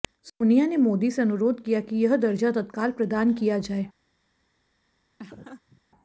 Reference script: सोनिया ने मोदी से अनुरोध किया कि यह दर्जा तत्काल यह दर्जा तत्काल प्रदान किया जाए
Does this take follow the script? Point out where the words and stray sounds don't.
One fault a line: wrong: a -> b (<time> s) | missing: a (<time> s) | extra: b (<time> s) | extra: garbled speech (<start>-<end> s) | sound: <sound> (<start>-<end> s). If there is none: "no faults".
missing: यह दर्जा तत्काल (2.9 s)
sound: laugh (5.2-5.8 s)